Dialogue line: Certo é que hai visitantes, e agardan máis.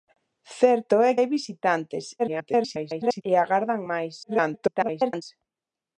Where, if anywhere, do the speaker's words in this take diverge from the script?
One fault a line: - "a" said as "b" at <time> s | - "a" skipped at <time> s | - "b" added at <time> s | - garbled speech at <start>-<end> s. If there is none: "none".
- "que" skipped at 1.1 s
- garbled speech at 2.2-3.2 s
- garbled speech at 4.2-5.2 s